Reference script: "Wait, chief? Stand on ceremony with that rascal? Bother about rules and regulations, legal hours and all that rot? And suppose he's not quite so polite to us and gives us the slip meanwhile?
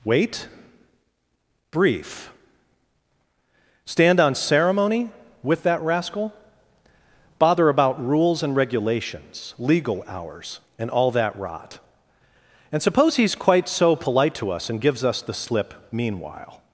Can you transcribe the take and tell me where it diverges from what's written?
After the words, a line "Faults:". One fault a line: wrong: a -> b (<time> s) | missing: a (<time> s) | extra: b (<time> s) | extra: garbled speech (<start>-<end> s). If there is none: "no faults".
"Wait, brief? Stand on ceremony with that rascal? Bother about rules and regulations, legal hours and all that rot? And suppose he's quite so polite to us and gives us the slip meanwhile?
Faults:
wrong: chief -> brief (1.7 s)
missing: not (13.3 s)